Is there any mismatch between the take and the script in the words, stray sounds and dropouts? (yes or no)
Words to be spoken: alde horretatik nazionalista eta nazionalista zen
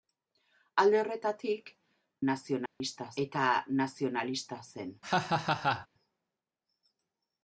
yes